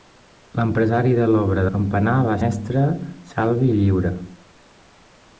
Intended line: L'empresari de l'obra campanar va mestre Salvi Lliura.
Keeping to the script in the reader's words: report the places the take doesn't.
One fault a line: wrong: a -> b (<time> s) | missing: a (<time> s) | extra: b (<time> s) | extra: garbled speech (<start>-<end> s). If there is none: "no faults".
no faults